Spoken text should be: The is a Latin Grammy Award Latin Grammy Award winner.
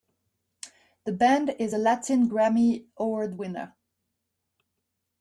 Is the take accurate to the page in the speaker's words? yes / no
no